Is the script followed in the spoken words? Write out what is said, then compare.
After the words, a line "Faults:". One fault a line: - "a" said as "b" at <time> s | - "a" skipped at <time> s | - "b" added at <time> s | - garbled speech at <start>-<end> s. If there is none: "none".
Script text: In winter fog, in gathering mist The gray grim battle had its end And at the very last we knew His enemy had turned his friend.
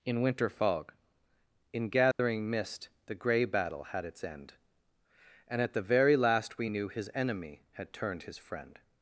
In winter fog, in gathering mist The gray battle had its end And at the very last we knew His enemy had turned his friend.
Faults:
- "grim" skipped at 3.5 s